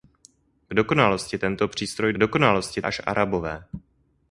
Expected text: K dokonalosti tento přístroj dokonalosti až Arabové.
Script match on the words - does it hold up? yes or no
yes